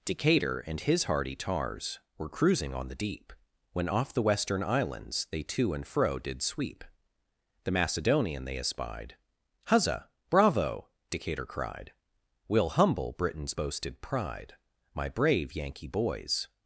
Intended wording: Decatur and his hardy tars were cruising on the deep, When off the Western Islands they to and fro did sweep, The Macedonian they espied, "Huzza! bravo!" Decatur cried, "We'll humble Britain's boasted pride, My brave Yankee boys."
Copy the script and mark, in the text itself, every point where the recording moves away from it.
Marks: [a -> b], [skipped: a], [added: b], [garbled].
Decatur and his hardy tars were cruising on the deep, When off the Western Islands they to and fro did sweep, The Macedonian they espied, "Huzza! bravo!" Decatur cried, "We'll humble Britain's boasted pride, My brave Yankee boys."